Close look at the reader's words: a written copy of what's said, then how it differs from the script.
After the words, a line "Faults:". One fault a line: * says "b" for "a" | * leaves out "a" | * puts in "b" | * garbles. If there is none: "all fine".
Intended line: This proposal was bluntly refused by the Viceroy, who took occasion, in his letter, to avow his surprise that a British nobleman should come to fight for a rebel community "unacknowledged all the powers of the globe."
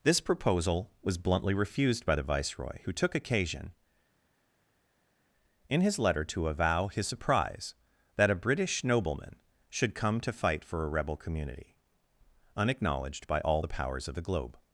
This proposal was bluntly refused by the Viceroy, who took occasion, in his letter, to avow his surprise that a British nobleman should come to fight for a rebel community "unacknowledged by all the powers of the globe."
Faults:
* puts in "by"